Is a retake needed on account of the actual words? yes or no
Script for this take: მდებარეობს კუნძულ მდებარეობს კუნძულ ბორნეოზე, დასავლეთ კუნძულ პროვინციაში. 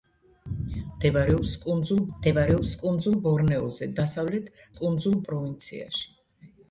no